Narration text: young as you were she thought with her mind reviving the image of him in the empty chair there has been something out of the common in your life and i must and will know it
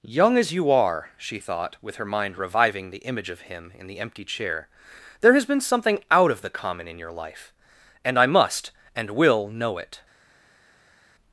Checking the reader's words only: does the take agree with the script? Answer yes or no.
no